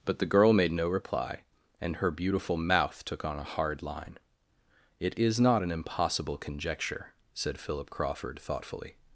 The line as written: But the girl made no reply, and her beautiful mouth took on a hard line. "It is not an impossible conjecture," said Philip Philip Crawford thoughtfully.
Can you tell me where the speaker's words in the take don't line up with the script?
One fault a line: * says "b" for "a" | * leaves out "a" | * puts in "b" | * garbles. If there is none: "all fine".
* leaves out "Philip"